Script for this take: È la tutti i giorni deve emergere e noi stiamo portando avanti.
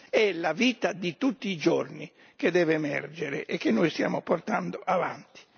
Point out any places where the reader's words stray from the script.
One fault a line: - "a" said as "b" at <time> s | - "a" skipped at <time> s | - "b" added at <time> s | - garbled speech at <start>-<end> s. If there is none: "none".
- "vita di" added at 0.5 s
- "che" added at 2.4 s
- "che" added at 3.6 s